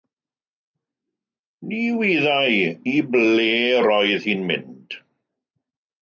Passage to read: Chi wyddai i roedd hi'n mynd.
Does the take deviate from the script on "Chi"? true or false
true